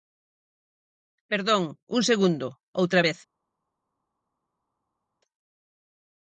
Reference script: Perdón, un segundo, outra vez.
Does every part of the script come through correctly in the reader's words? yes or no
yes